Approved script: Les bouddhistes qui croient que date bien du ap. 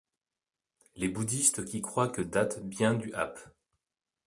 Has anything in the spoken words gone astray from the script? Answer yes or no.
no